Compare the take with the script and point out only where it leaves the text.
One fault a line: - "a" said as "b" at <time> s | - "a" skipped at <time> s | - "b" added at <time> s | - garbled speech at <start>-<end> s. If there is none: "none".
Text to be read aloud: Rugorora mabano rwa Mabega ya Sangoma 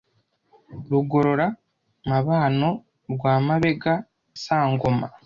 - "ya" skipped at 3.9 s